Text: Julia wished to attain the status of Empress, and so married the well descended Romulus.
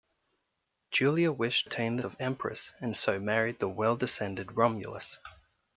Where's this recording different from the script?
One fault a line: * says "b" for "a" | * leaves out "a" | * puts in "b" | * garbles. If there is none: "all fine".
* leaves out "to"
* leaves out "status"